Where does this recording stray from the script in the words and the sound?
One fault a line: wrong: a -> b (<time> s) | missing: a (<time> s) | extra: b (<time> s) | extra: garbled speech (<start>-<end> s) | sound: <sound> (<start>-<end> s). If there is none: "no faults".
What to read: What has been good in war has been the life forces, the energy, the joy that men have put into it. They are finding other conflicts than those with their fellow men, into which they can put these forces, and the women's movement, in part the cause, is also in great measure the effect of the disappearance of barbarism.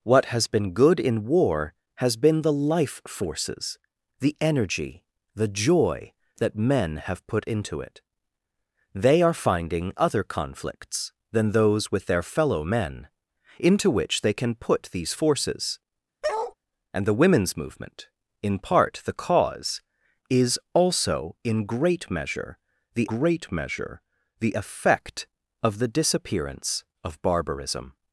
sound: bark (16.2-16.5 s)
extra: great measure the (23.1 s)